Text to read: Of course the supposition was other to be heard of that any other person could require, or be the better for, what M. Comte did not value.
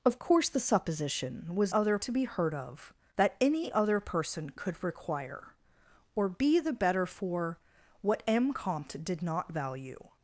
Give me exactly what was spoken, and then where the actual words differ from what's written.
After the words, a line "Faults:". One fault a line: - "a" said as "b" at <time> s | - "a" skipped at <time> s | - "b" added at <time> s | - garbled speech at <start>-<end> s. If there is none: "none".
Of course the supposition was other to be heard of that any other person could require, or be the better for, what M. Comte did not value.
Faults:
none